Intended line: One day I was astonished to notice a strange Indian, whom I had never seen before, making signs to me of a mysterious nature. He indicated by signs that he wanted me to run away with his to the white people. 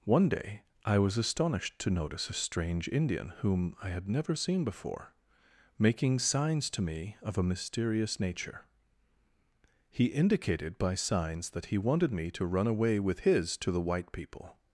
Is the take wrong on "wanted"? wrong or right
right